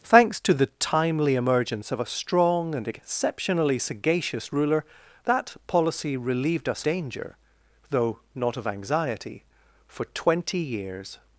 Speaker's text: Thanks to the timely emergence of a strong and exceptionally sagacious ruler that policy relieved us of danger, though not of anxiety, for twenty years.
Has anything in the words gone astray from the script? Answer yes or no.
yes